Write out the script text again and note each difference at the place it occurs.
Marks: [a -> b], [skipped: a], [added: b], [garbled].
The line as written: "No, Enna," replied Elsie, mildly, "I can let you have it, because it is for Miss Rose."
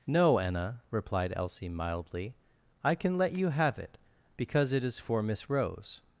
"No, Enna," replied Elsie, mildly, "I can let you have it, because it is for Miss Rose."